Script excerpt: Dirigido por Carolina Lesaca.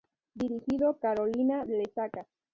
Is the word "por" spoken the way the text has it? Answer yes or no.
no